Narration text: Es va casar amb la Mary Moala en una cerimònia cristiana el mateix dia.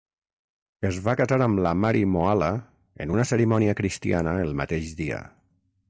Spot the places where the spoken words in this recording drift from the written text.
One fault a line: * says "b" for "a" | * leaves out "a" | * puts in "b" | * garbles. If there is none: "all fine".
all fine